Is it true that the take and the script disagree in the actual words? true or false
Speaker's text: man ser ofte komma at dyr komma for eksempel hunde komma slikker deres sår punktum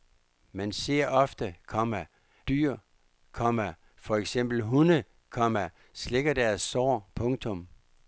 true